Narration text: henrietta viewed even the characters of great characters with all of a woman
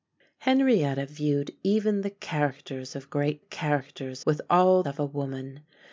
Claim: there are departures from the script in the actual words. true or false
false